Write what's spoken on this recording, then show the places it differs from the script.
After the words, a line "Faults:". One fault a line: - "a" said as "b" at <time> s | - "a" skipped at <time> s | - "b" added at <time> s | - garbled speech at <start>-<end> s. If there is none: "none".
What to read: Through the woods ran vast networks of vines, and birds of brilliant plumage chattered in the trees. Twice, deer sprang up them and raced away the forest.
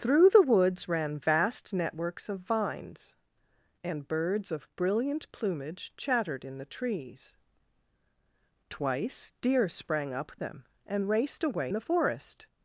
Through the woods ran vast networks of vines, and birds of brilliant plumage chattered in the trees. Twice, deer sprang up them and raced away the forest.
Faults:
none